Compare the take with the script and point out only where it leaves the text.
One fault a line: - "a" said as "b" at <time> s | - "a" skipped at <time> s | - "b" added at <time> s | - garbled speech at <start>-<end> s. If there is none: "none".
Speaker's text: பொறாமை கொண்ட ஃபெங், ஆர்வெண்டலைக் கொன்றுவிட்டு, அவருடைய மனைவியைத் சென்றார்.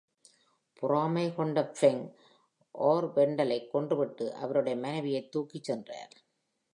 - "தூக்கிச்" added at 5.3 s